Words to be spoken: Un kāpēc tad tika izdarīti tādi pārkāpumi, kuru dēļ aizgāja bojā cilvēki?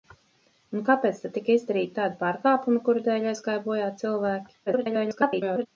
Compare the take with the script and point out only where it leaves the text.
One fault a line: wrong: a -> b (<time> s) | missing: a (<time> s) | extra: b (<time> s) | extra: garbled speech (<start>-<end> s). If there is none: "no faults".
extra: garbled speech (4.7-5.7 s)